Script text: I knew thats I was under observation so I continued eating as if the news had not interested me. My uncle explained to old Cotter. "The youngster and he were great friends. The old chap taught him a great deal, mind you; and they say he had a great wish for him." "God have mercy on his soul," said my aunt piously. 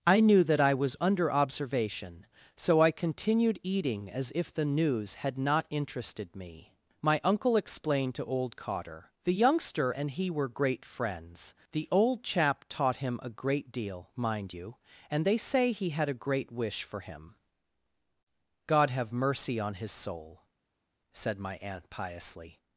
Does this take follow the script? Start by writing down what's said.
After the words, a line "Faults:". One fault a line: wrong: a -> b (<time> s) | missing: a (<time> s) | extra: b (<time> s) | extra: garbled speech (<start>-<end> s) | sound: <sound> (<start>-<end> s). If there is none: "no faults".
I knew that I was under observation so I continued eating as if the news had not interested me. My uncle explained to old Cotter. "The youngster and he were great friends. The old chap taught him a great deal, mind you; and they say he had a great wish for him." "God have mercy on his soul," said my aunt piously.
Faults:
wrong: thats -> that (0.5 s)